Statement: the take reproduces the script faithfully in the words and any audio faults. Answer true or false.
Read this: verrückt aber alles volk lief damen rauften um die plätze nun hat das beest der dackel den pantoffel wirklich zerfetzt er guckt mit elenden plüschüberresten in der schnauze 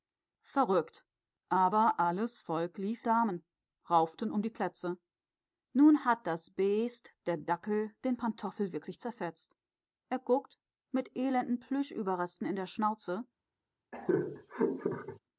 false